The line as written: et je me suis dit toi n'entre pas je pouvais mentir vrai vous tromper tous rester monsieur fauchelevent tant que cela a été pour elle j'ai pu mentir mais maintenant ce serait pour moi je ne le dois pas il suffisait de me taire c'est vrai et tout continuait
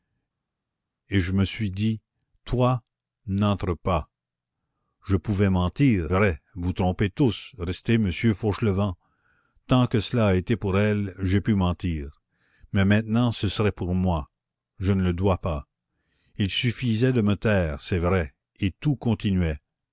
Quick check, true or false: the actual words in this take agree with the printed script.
true